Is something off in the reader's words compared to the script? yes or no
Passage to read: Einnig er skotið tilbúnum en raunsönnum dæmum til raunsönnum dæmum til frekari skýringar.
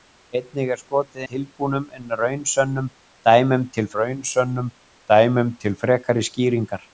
no